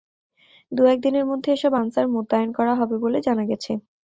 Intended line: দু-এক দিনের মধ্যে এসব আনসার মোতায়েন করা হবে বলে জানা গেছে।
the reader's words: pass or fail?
pass